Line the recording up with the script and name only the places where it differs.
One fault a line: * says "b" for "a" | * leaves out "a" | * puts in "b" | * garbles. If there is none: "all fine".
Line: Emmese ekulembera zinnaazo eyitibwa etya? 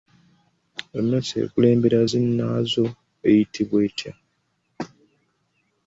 all fine